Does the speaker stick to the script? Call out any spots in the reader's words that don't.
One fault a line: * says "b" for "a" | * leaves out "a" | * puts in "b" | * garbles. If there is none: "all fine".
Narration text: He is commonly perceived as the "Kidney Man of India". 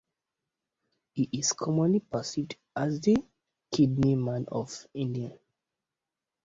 all fine